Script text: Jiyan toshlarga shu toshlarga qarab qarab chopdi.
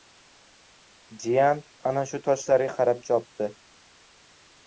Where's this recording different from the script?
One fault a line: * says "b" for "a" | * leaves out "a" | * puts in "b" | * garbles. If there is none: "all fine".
* says "ana" for "toshlarga"
* leaves out "qarab"